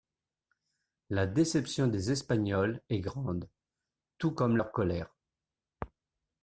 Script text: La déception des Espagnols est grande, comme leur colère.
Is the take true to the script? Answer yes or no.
no